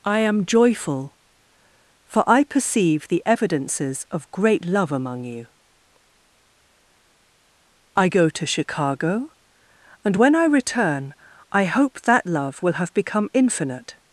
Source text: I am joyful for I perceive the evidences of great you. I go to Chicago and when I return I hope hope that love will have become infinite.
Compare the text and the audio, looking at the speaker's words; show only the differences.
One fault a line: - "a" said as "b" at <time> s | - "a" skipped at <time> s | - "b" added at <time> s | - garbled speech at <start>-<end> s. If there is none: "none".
- "love among" added at 4.7 s
- "hope" skipped at 12.0 s